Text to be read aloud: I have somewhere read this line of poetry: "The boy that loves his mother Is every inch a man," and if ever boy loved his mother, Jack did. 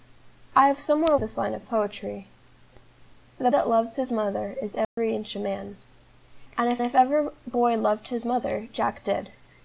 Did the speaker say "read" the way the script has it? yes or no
no